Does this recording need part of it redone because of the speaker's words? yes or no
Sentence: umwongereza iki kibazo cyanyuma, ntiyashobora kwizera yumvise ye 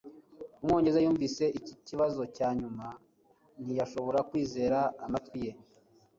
yes